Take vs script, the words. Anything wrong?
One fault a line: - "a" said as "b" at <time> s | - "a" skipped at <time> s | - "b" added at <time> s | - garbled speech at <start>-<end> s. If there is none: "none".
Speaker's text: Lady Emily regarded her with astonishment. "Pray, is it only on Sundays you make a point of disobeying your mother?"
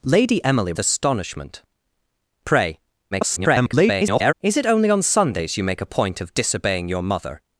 - "regarded her with" skipped at 0.7 s
- garbled speech at 3.1-4.3 s